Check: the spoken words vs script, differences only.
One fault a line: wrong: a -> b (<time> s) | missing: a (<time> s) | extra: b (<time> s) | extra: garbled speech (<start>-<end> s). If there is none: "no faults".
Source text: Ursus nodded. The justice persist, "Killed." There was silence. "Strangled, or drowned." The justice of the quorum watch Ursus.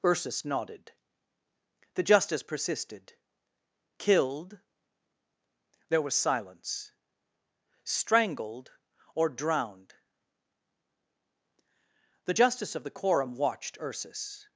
wrong: persist -> persisted (2.4 s)
wrong: watch -> watched (13.3 s)